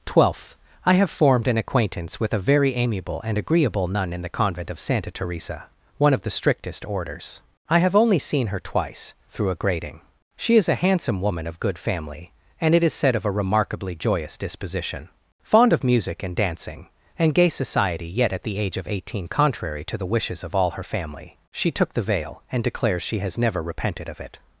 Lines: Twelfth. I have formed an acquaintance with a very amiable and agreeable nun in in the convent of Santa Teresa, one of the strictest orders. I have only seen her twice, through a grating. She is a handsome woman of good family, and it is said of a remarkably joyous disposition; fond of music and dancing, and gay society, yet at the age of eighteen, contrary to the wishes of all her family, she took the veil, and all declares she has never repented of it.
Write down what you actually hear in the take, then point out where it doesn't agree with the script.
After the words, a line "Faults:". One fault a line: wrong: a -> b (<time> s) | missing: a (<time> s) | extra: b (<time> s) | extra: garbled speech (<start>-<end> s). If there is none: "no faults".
Twelfth. I have formed an acquaintance with a very amiable and agreeable nun in the convent of Santa Teresa, one of the strictest orders. I have only seen her twice, through a grating. She is a handsome woman of good family, and it is said of a remarkably joyous disposition; fond of music and dancing, and gay society, yet at the age of eighteen, contrary to the wishes of all her family, she took the veil, and declares she has never repented of it.
Faults:
missing: in (4.2 s)
missing: all (22.6 s)